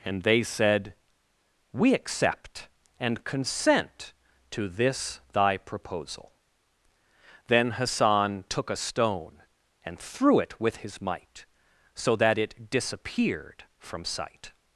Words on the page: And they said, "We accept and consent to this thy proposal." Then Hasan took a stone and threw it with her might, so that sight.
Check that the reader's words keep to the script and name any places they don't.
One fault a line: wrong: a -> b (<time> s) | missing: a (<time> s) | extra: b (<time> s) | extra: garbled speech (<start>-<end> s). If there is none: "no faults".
wrong: her -> his (10.8 s)
extra: it disappeared from (12.4 s)